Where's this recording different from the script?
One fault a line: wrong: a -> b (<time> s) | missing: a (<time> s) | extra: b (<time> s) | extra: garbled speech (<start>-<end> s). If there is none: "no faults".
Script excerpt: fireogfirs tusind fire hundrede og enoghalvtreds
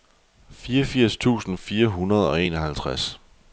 no faults